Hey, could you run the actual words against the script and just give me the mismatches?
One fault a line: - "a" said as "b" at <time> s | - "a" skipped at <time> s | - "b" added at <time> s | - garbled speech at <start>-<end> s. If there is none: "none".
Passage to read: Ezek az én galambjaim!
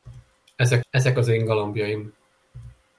- "ezek" added at 0.9 s